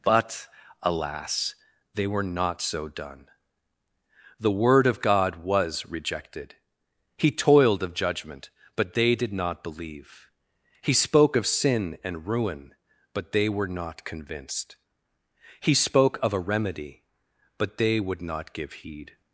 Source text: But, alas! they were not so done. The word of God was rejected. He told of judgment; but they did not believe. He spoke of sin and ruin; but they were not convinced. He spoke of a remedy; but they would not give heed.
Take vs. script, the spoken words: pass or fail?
fail